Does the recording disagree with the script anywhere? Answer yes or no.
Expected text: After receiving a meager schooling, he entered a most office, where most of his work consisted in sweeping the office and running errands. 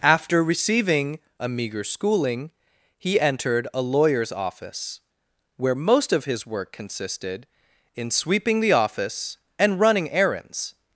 yes